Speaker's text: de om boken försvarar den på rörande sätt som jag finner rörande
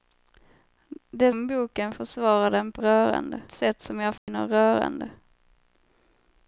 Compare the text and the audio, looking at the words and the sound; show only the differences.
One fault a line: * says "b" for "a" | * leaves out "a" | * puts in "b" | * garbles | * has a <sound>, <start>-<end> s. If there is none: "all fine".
* has a dropout, 4.2-4.3 s